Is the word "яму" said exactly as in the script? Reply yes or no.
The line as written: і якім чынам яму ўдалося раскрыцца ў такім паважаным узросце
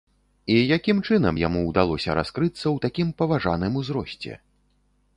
yes